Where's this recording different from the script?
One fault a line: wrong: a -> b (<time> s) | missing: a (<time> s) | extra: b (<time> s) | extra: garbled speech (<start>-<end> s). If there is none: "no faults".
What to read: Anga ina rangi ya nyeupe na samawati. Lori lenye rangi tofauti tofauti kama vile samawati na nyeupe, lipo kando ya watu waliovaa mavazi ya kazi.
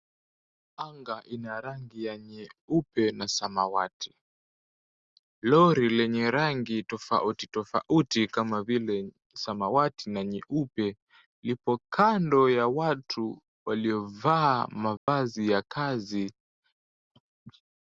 no faults